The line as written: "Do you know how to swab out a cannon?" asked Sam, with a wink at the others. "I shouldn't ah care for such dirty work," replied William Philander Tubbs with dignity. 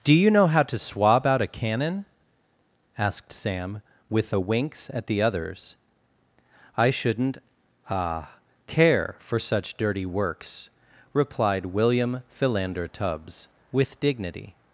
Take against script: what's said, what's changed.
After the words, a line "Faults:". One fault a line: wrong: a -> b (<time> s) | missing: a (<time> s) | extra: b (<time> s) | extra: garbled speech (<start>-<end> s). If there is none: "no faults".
"Do you know how to swab out a cannon?" asked Sam, with a winks at the others. "I shouldn't ah care for such dirty works," replied William Philander Tubbs with dignity.
Faults:
wrong: wink -> winks (4.4 s)
wrong: work -> works (10.0 s)